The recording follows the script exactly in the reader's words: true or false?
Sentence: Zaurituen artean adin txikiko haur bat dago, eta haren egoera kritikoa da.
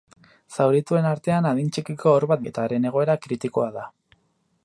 false